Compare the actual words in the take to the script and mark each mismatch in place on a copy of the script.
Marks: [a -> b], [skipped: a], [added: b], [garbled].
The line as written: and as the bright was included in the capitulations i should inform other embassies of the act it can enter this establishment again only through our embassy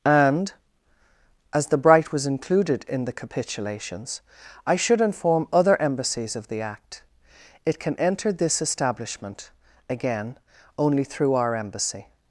and as the bright was included in the capitulations i should inform other embassies of the act it can enter this establishment again only through our embassy